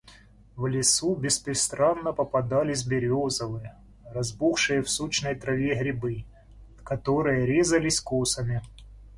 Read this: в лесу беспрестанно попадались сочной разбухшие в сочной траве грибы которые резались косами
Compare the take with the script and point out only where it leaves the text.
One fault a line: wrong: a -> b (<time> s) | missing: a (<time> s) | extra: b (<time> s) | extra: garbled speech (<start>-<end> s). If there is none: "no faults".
wrong: сочной -> березовые (2.9 s)